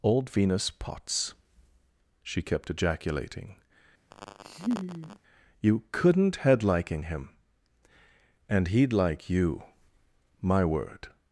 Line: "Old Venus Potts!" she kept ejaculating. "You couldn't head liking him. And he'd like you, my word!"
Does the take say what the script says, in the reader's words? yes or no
yes